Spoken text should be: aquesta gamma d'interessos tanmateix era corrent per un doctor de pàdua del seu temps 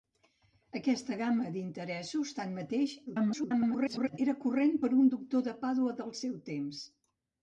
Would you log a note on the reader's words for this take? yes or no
yes